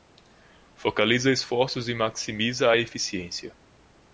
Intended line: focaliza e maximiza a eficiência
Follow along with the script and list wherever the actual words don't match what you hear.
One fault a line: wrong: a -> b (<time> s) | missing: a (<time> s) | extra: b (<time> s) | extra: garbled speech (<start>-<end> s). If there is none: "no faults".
extra: esforços (1.3 s)